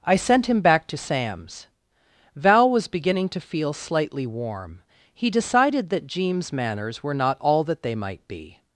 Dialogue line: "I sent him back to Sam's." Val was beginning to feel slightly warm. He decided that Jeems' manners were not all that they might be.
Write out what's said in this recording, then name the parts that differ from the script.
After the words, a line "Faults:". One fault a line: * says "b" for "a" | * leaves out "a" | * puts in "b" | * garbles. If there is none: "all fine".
"I sent him back to Sam's." Val was beginning to feel slightly warm. He decided that Jeems' manners were not all that they might be.
Faults:
all fine